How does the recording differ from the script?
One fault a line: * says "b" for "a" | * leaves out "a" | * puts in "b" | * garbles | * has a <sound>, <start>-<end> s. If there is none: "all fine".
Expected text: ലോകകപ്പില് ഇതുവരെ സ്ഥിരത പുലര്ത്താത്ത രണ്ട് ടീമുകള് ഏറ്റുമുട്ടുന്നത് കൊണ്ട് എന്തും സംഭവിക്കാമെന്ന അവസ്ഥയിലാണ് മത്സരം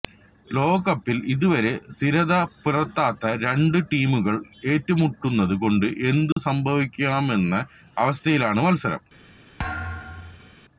* has a dropout, 6.3-6.4 s
* has a thud, 9.6-10.5 s